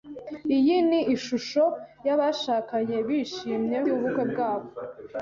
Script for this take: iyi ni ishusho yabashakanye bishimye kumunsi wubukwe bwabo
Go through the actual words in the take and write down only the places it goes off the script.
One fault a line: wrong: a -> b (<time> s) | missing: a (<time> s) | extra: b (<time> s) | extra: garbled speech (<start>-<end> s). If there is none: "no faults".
missing: kumunsi (3.8 s)